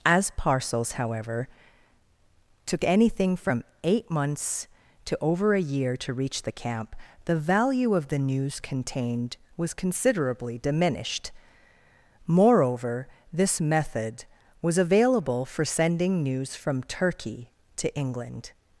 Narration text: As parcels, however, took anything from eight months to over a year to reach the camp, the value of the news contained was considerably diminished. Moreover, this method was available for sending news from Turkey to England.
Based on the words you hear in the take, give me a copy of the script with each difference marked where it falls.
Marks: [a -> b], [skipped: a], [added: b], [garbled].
As parcels, however, took anything from eight months to over a year to reach the camp, the value of the news contained was considerably diminished. Moreover, this method was available for sending news from Turkey to England.